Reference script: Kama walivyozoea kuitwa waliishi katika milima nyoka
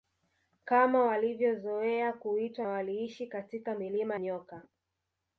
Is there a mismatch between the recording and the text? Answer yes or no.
no